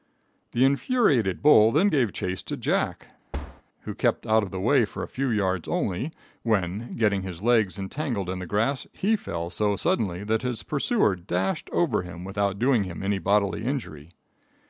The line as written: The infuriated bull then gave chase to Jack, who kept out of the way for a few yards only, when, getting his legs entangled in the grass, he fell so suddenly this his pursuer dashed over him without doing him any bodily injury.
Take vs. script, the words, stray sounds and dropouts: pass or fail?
fail